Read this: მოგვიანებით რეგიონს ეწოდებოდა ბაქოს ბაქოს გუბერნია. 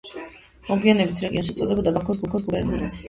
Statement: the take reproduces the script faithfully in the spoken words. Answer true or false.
true